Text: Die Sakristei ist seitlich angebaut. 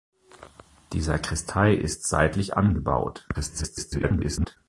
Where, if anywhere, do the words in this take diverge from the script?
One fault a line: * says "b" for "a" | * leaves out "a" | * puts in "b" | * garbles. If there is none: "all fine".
* garbles